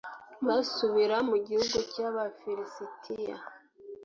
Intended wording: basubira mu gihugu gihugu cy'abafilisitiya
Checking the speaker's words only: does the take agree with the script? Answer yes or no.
no